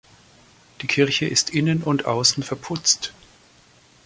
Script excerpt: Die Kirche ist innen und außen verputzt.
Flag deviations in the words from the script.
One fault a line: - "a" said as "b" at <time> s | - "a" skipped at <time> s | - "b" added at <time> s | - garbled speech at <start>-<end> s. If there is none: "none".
none